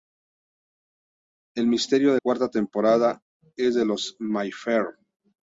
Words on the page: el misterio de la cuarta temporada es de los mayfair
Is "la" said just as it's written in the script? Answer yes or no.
no